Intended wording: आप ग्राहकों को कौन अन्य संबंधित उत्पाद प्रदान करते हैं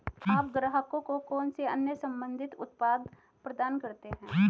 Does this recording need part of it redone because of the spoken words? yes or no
yes